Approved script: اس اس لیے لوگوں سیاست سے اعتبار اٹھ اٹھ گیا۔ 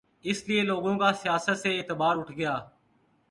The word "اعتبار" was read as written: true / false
true